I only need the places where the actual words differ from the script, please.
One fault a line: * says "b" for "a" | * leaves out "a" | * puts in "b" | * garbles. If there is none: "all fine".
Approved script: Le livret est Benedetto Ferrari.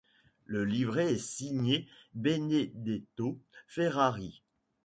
* puts in "signé"